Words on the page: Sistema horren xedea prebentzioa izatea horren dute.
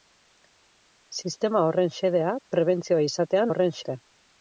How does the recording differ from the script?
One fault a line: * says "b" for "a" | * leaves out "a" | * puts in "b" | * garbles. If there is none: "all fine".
all fine